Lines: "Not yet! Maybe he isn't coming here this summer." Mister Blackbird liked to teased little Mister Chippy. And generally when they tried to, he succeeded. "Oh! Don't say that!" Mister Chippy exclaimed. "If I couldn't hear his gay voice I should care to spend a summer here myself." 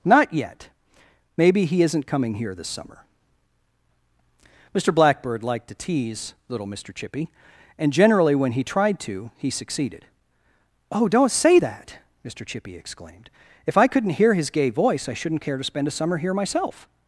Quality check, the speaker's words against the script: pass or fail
fail